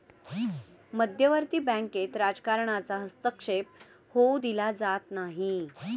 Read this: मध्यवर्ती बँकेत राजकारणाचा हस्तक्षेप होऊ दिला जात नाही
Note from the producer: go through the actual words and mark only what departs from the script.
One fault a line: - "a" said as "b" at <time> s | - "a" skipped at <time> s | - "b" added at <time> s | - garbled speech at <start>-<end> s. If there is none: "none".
none